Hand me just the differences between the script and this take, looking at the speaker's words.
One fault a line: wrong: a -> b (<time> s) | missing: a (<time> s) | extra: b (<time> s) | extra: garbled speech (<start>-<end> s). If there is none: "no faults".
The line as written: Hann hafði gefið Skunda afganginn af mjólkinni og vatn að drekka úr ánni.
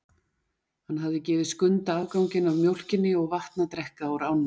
no faults